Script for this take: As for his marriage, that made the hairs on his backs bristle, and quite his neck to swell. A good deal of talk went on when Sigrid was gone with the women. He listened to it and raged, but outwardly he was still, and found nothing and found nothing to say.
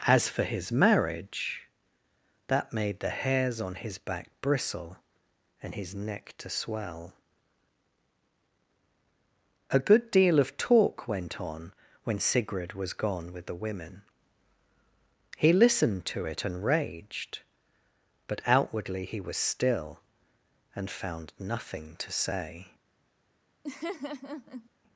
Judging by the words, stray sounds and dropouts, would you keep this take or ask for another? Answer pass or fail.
fail